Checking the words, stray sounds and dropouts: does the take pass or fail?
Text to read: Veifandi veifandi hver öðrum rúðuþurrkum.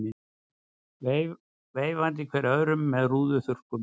fail